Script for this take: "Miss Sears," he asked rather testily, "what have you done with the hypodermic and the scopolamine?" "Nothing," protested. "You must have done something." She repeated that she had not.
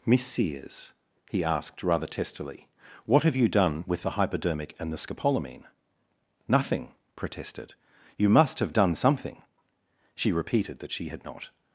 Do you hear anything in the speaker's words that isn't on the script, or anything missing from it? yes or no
no